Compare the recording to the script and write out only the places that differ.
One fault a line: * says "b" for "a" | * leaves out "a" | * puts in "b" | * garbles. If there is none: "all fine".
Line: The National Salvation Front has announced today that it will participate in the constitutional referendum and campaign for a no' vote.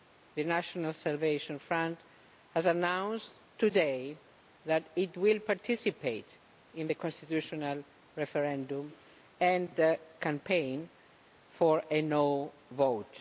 all fine